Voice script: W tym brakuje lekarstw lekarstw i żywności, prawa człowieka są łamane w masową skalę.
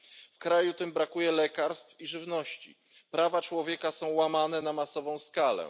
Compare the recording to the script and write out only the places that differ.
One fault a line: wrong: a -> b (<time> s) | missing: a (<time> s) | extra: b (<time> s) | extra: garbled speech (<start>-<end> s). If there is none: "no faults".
extra: kraju (0.4 s)
missing: lekarstw (2.0 s)
wrong: w -> na (4.6 s)